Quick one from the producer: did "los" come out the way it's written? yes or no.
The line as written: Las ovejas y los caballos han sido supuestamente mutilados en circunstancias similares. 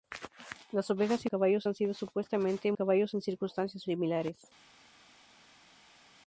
no